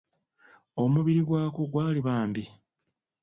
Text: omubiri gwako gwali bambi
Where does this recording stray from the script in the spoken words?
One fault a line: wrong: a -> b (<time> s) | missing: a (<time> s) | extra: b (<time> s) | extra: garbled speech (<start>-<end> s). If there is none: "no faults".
no faults